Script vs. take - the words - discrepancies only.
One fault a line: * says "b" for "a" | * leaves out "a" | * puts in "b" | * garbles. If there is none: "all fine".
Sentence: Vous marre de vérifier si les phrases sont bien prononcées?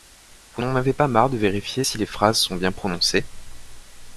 * puts in "n'en avez pas"